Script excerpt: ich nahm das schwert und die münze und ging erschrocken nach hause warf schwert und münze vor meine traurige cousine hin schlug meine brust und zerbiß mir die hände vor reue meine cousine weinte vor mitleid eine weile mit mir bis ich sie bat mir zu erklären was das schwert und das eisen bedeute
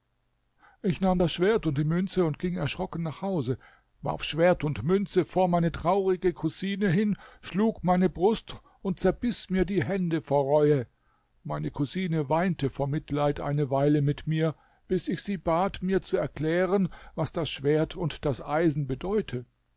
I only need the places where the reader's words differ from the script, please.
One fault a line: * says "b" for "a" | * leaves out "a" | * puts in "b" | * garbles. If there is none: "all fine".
all fine